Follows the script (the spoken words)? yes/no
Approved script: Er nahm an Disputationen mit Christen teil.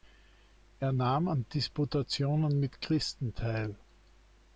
yes